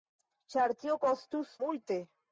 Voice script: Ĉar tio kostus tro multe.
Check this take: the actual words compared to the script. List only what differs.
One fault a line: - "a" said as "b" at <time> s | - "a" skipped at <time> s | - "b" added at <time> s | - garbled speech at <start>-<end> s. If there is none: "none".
- "tro" skipped at 1.5 s